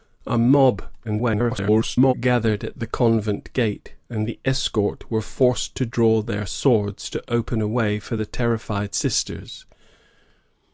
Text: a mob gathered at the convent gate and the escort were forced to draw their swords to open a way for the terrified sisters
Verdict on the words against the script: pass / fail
fail